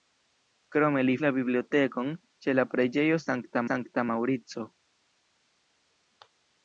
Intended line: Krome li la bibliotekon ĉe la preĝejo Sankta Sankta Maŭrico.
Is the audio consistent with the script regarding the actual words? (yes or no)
yes